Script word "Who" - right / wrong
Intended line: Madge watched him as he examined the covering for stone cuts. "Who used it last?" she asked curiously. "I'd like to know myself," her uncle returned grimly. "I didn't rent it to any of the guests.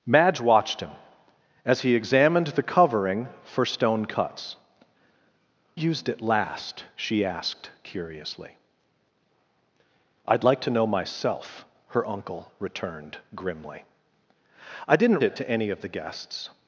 wrong